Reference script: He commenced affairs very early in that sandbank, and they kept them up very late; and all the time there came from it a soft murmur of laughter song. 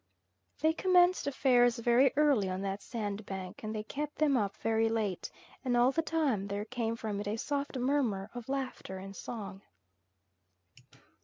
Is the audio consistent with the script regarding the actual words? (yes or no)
no